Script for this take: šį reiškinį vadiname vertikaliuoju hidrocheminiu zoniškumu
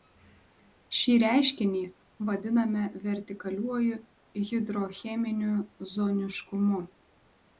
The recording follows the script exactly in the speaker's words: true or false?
true